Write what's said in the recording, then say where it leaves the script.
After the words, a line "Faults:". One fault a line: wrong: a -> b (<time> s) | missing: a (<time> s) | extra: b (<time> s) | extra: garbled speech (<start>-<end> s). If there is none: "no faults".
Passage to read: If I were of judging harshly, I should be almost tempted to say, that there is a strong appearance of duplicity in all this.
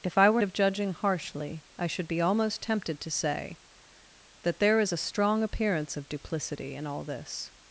If I were of judging harshly, I should be almost tempted to say, that there is a strong appearance of duplicity in all this.
Faults:
no faults